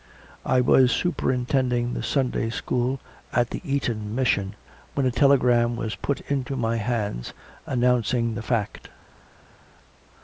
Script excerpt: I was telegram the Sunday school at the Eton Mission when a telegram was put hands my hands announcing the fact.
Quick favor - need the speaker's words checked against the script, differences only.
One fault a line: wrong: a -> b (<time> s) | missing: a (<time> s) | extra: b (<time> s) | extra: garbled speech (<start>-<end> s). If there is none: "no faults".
wrong: telegram -> superintending (0.9 s)
wrong: hands -> into (6.2 s)